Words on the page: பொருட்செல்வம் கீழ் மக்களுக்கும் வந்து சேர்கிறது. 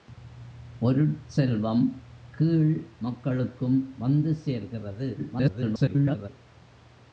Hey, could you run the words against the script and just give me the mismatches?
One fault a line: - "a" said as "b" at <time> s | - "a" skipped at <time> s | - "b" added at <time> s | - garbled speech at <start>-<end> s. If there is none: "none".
- garbled speech at 5.2-6.3 s